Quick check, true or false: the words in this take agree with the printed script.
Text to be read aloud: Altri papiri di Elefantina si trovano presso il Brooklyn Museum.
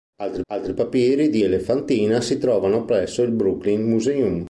false